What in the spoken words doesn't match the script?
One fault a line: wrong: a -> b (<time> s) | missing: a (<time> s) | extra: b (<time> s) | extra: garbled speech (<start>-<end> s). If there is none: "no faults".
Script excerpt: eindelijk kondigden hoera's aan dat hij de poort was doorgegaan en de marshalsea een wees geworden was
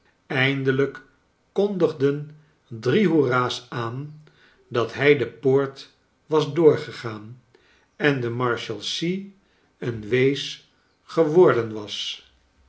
extra: drie (2.7 s)